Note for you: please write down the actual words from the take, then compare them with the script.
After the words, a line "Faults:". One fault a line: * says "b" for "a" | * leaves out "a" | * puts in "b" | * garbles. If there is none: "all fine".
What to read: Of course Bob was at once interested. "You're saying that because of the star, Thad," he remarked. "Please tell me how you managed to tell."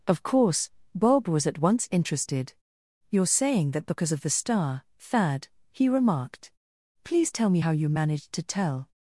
Of course Bob was at once interested. "You're saying that because of the star, Thad," he remarked. "Please tell me how you managed to tell."
Faults:
all fine